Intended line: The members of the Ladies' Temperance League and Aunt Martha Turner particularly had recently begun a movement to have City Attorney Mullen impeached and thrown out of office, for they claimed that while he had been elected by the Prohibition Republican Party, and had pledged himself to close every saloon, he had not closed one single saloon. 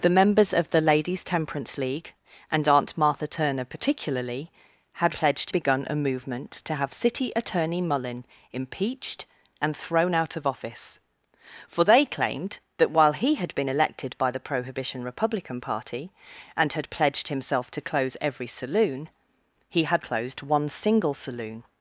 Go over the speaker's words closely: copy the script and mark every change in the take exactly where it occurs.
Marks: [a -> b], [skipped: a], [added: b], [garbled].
The members of the Ladies' Temperance League and Aunt Martha Turner particularly had [recently -> pledged] begun a movement to have City Attorney Mullen impeached and thrown out of office, for they claimed that while he had been elected by the Prohibition Republican Party, and had pledged himself to close every saloon, he had [skipped: not] closed one single saloon.